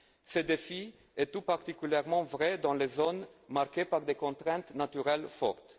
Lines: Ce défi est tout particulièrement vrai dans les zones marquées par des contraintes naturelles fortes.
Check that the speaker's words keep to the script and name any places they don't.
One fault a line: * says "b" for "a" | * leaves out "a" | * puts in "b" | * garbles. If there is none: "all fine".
all fine